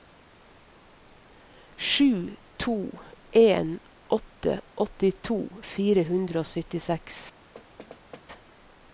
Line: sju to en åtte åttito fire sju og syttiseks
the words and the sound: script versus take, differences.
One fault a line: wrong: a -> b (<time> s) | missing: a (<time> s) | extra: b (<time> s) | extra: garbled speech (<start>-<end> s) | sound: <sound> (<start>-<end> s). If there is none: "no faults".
wrong: sju -> hundre (6.1 s)
sound: thud (7.5-8.3 s)